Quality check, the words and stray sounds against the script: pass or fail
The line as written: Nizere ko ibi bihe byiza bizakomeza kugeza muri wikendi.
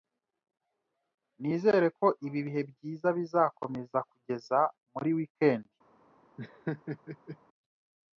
fail